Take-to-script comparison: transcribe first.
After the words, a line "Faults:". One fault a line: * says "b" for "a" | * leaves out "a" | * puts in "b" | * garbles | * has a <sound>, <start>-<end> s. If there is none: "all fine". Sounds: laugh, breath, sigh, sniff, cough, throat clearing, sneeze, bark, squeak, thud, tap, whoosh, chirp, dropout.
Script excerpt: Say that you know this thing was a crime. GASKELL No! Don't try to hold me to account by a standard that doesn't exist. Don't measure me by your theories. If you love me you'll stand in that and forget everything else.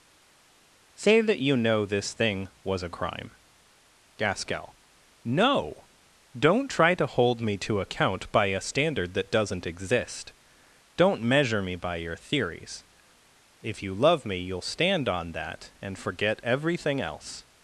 Say that you know this thing was a crime. GASKELL No! Don't try to hold me to account by a standard that doesn't exist. Don't measure me by your theories. If you love me you'll stand on that and forget everything else.
Faults:
* says "on" for "in"